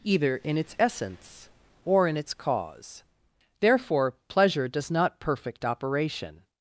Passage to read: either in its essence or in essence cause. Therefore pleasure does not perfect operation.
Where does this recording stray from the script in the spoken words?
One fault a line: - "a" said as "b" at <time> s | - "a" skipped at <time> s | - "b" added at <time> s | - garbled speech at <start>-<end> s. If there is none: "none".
- "essence" said as "its" at 2.2 s